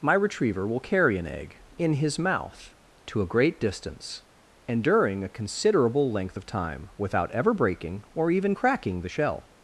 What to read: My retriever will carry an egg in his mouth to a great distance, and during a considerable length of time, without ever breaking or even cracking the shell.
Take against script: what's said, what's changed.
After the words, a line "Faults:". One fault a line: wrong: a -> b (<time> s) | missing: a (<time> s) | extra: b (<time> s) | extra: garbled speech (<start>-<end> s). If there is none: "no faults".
My retriever will carry an egg in his mouth to a great distance, and during a considerable length of time, without ever breaking or even cracking the shell.
Faults:
no faults